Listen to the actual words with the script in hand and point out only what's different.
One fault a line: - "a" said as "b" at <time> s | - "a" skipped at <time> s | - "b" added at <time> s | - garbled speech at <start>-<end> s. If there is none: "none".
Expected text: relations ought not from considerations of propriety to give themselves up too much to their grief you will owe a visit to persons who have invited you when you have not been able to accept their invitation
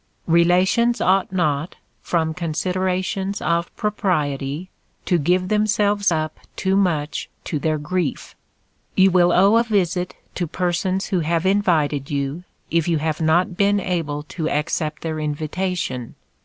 - "when" said as "if" at 12.7 s